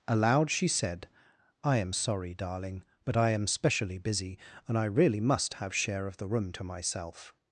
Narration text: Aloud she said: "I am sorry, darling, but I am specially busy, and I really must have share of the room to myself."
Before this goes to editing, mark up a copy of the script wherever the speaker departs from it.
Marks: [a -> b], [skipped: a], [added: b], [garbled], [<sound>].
Aloud she said: "I am sorry, darling, but I am specially busy, and I really must have share of the room to myself."